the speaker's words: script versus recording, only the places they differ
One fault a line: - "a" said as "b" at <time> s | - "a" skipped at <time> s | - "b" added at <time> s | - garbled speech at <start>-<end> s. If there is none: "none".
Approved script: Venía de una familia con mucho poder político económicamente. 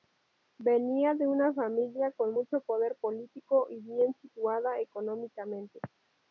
- "y bien situada" added at 3.7 s